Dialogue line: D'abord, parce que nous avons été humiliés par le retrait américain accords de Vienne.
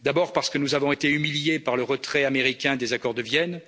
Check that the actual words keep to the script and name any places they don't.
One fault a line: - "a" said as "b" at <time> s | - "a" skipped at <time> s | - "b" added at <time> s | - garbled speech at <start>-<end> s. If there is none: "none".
- "des" added at 2.8 s